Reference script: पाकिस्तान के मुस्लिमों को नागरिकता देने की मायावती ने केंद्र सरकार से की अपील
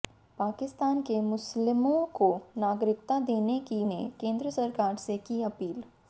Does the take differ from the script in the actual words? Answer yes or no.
yes